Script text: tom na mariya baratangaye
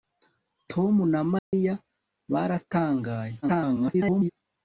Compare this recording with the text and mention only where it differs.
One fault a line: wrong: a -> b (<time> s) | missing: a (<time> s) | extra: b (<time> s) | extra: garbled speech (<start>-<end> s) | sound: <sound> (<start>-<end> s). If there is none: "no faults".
sound: dropout (1.4-1.5 s)
extra: garbled speech (3.4-4.3 s)